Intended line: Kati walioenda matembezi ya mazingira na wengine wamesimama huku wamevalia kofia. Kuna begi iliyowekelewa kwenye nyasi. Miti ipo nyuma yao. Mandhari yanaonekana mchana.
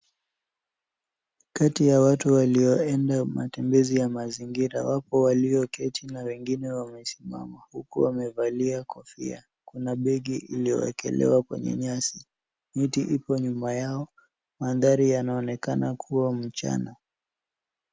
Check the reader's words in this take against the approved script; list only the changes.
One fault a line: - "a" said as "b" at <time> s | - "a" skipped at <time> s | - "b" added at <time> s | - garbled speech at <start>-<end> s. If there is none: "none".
- "ya watu" added at 1.9 s
- "wapo walioketi" added at 4.8 s
- "kuwa" added at 15.9 s